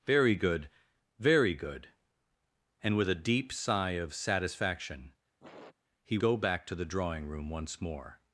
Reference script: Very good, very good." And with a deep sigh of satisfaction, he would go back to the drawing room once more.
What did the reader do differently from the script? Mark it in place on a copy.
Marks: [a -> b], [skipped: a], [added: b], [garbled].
Very good, very good." And with a deep sigh of satisfaction, he [skipped: would] go back to the drawing room once more.